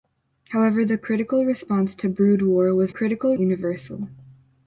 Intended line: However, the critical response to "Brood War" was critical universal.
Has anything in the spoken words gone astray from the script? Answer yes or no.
no